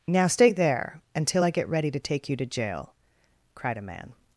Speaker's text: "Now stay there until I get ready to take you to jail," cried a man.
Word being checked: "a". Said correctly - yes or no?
yes